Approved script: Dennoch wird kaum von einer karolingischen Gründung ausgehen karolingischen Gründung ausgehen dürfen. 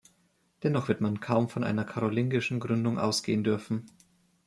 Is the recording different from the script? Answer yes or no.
yes